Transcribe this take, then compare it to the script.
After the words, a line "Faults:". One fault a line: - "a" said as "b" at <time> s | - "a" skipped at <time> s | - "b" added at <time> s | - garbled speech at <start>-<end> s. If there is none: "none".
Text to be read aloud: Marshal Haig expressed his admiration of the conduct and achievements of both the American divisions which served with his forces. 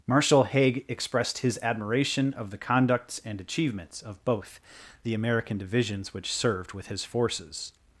Marshal Haig expressed his admiration of the conducts and achievements of both the American divisions which served with his forces.
Faults:
- "conduct" said as "conducts" at 2.6 s